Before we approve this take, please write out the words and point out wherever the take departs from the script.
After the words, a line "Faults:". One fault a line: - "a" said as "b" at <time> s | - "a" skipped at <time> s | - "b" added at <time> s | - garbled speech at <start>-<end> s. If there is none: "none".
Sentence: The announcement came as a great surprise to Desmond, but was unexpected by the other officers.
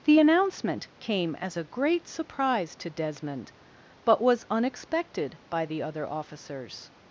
The announcement came as a great surprise to Desmond, but was unexpected by the other officers.
Faults:
none